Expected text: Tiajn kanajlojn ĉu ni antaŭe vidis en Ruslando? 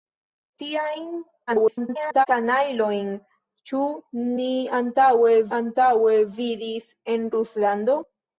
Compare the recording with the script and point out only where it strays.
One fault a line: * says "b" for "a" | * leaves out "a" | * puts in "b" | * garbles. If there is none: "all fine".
* garbles
* puts in "antaŭe"